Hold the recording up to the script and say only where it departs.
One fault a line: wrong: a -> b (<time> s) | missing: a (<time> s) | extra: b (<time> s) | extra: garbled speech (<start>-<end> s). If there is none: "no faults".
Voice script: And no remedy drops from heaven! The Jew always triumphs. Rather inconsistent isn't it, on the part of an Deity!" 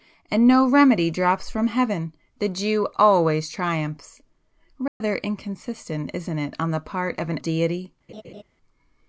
no faults